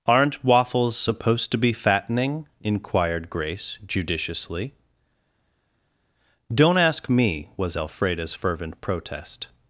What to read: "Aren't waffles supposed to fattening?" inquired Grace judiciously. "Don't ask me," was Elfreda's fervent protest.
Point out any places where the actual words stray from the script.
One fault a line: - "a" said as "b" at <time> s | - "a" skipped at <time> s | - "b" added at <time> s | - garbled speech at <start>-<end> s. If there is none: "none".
- "be" added at 1.6 s